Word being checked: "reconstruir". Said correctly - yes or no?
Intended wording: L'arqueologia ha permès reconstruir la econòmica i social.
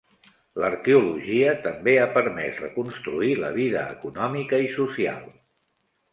yes